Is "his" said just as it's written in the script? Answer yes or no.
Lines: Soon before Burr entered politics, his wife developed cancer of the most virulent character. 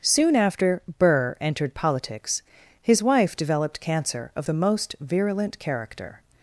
yes